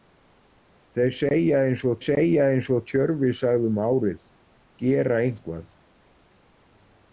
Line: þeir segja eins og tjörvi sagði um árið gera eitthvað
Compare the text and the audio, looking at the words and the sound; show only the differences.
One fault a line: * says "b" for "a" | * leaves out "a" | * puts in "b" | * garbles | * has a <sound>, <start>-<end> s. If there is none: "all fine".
* puts in "segja eins og"